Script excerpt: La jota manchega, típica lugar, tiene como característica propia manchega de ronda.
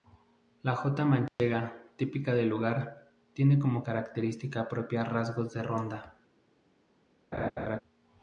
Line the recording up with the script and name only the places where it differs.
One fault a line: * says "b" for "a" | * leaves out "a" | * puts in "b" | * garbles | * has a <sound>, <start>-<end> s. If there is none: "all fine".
* has a dropout, 1.3-1.4 s
* puts in "del"
* says "rasgos" for "manchega"
* has a laugh, 7.3-7.8 s